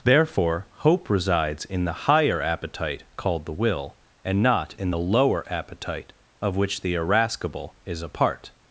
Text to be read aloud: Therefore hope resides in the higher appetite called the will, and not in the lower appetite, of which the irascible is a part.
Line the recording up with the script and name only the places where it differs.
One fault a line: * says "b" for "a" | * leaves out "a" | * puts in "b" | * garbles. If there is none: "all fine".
all fine